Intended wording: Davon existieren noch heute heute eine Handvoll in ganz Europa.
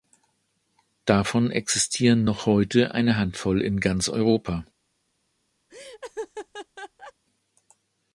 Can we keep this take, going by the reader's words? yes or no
no